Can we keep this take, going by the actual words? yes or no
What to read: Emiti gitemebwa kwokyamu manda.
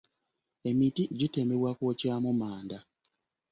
yes